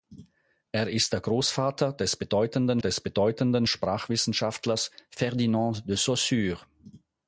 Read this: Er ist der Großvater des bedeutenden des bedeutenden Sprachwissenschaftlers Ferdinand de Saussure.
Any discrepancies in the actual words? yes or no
no